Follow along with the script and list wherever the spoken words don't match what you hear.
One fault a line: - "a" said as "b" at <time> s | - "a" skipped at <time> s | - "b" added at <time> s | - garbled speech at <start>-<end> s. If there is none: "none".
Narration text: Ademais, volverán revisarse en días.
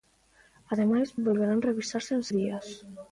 none